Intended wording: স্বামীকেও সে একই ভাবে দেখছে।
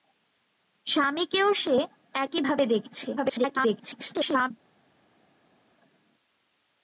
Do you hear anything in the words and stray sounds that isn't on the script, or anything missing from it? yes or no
yes